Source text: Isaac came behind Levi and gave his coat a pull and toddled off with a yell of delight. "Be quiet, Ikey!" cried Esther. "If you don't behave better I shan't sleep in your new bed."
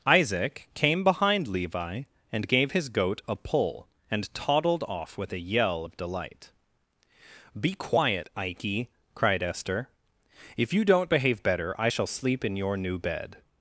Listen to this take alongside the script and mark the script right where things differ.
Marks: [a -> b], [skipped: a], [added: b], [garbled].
Isaac came behind Levi and gave his [coat -> goat] a pull and toddled off with a yell of delight. "Be quiet, Ikey!" cried Esther. "If you don't behave better I [shan't -> shall] sleep in your new bed."